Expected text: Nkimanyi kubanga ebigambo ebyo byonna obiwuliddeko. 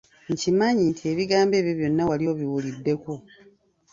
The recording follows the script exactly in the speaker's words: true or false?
false